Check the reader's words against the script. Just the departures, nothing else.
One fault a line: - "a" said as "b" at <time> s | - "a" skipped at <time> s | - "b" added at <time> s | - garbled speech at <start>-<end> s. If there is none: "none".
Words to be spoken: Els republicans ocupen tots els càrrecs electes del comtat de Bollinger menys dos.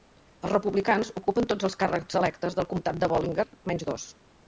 none